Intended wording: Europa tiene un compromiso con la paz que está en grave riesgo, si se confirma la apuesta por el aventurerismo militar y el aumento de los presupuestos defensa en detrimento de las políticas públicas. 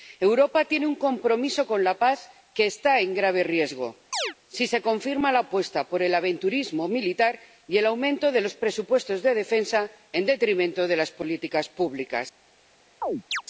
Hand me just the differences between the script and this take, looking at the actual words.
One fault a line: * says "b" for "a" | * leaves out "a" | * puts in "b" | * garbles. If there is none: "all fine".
* puts in "de"